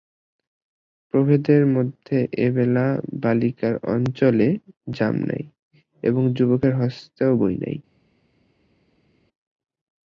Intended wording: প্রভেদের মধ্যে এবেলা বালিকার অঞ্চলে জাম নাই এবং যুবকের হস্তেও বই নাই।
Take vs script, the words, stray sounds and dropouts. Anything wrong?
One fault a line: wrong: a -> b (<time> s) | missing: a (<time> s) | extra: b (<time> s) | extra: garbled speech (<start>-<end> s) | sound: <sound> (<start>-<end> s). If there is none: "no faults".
no faults